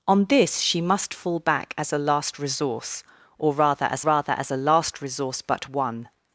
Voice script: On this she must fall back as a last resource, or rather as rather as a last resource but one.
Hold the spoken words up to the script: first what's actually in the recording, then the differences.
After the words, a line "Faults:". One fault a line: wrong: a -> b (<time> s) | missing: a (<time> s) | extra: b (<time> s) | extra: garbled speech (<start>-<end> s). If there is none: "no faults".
On this she must fall back as a last resource, or rather as rather as a last resource but one.
Faults:
no faults